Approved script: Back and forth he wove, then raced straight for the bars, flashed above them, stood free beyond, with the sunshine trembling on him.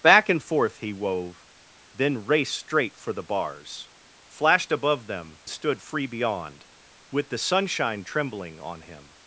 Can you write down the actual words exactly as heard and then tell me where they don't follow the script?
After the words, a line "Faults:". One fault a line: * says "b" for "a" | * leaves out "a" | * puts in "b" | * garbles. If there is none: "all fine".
Back and forth he wove, then raced straight for the bars, flashed above them, stood free beyond, with the sunshine trembling on him.
Faults:
all fine